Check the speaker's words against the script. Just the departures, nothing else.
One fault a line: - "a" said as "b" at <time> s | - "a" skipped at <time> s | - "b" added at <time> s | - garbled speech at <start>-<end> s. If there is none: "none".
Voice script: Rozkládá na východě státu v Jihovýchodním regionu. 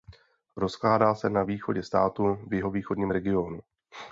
- "se" added at 1.1 s